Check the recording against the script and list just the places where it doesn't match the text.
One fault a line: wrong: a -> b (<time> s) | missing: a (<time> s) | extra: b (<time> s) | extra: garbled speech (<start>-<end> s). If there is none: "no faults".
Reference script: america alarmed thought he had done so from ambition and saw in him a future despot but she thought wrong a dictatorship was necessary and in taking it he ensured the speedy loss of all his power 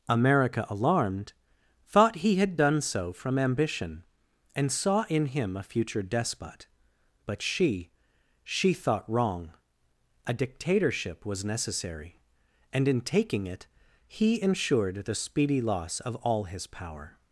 extra: she (8.4 s)